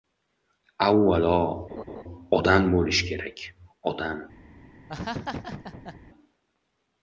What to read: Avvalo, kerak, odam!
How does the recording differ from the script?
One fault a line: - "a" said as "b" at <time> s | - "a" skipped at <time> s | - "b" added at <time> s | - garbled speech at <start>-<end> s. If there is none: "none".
- "odam bo‘lish" added at 2.4 s